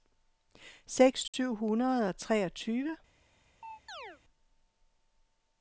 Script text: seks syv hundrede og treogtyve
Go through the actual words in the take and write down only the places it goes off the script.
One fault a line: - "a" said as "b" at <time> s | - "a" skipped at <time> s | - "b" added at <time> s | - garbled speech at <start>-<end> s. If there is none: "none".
none